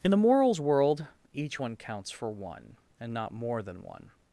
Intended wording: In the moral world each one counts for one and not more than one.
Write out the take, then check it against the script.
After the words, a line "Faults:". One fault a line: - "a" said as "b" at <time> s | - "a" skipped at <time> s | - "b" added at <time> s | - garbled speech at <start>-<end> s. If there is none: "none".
In the morals world each one counts for one and not more than one.
Faults:
- "moral" said as "morals" at 0.2 s